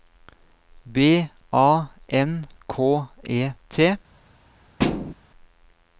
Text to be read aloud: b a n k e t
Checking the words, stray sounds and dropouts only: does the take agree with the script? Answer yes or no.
no